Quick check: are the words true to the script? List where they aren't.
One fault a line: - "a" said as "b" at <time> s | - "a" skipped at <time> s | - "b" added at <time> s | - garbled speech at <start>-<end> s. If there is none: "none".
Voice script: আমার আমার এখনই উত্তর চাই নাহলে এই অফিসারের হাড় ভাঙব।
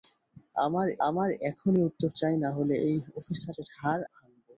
none